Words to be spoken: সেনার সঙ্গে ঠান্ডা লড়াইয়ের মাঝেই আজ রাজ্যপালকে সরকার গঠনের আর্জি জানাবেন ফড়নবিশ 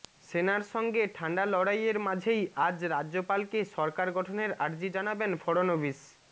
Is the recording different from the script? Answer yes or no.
no